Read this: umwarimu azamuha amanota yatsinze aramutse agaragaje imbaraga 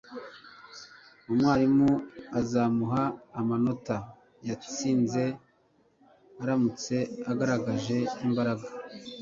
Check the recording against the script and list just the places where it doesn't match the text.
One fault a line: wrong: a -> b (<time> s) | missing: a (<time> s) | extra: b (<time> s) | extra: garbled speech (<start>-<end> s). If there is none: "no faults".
no faults